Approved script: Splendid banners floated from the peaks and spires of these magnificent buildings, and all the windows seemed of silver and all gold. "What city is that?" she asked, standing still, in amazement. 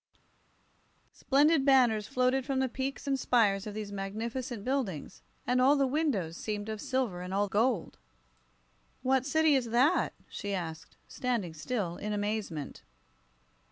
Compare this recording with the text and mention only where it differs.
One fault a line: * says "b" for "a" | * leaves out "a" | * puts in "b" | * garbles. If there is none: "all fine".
all fine